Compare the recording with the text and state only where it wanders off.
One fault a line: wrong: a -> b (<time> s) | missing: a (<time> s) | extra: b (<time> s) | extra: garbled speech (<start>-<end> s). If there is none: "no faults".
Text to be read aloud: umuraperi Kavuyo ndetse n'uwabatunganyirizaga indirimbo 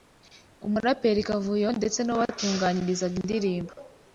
no faults